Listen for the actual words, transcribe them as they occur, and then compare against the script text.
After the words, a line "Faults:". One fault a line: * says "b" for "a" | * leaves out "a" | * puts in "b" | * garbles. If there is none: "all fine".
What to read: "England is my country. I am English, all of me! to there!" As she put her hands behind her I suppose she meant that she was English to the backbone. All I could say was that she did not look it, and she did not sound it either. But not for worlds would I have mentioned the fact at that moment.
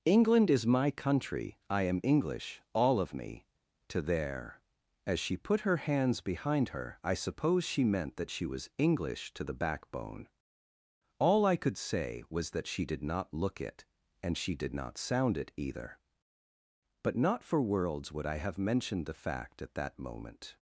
"England is my country. I am English, all of me! to there!" As she put her hands behind her I suppose she meant that she was English to the backbone. All I could say was that she did not look it, and she did not sound it either. But not for worlds would I have mentioned the fact at that moment.
Faults:
all fine